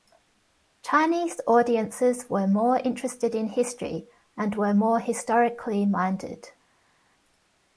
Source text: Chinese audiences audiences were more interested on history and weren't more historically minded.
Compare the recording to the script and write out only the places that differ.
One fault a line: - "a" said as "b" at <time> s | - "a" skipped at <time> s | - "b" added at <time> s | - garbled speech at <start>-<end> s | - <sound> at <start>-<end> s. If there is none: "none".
- "audiences" skipped at 2.3 s
- "on" said as "in" at 3.4 s
- "weren't" said as "were" at 4.5 s